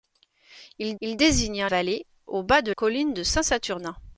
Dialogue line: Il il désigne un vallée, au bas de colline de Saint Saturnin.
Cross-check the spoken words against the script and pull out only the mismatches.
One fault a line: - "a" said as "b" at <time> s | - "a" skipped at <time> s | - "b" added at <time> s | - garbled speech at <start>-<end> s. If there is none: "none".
none